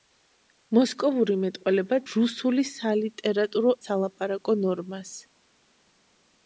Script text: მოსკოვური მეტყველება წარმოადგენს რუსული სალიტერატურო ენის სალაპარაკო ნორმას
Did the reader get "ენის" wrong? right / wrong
wrong